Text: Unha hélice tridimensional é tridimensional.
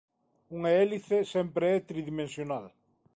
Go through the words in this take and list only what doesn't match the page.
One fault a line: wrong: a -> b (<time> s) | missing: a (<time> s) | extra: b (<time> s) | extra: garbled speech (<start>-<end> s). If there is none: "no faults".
wrong: tridimensional -> sempre (1.3 s)